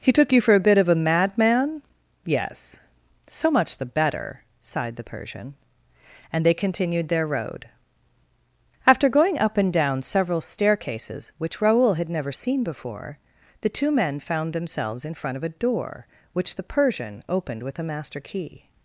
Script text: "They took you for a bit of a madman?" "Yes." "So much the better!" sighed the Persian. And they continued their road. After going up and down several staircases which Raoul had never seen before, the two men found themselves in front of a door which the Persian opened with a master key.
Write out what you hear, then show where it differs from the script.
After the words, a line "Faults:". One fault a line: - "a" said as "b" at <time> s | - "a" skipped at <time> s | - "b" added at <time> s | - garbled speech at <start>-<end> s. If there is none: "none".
"He took you for a bit of a madman?" "Yes." "So much the better!" sighed the Persian. And they continued their road. After going up and down several staircases which Raoul had never seen before, the two men found themselves in front of a door which the Persian opened with a master key.
Faults:
- "They" said as "He" at 0.0 s